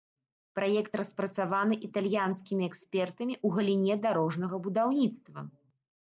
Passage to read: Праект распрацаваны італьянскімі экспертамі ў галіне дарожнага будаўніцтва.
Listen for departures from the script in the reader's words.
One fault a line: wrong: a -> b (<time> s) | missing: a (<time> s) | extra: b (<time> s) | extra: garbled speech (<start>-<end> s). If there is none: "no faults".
no faults